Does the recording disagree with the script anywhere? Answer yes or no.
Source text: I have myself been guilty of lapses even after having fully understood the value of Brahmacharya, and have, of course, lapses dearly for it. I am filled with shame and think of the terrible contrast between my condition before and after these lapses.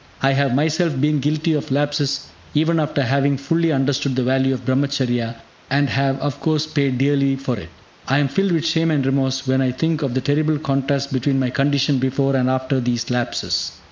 yes